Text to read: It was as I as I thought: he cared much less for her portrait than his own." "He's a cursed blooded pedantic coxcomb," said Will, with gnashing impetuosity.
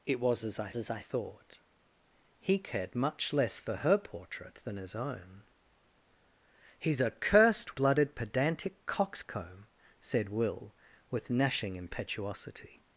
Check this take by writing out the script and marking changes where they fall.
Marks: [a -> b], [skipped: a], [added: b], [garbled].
It was as I as I thought: he cared much less for her portrait than his own." "He's a cursed blooded pedantic coxcomb," said Will, with gnashing impetuosity.